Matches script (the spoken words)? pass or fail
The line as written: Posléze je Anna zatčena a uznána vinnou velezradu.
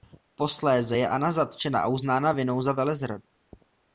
fail